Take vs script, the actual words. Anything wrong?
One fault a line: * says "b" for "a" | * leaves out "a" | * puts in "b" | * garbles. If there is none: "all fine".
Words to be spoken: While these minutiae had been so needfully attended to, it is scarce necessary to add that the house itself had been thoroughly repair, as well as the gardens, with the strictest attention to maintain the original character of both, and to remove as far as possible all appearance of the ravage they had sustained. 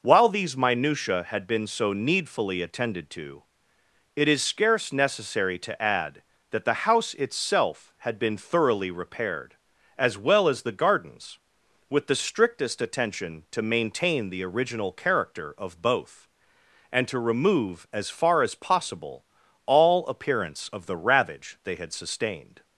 * says "repaired" for "repair"